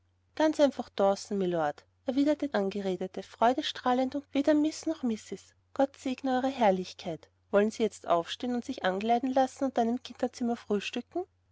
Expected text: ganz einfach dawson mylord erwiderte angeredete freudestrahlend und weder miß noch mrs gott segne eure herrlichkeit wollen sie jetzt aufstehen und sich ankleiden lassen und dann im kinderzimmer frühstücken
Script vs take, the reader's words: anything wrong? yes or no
no